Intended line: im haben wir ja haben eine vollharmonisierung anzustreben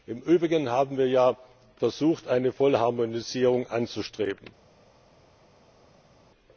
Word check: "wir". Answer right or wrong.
right